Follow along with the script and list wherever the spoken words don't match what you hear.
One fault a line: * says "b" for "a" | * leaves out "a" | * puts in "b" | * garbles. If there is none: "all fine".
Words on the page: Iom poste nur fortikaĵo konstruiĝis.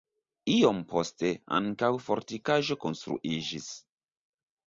* says "ankaŭ" for "nur"